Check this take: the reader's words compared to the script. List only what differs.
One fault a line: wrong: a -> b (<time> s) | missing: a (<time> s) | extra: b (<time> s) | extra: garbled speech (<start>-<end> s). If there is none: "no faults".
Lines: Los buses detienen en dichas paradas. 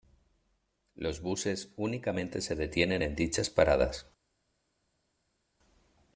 extra: únicamente se (1.8 s)